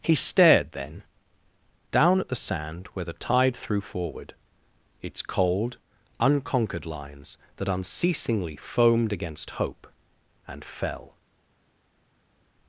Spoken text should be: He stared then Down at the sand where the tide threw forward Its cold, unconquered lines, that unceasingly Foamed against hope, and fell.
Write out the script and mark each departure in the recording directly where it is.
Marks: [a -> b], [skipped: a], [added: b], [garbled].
He stared then Down at the sand where the tide threw forward Its cold, unconquered lines, that unceasingly Foamed against hope, and fell.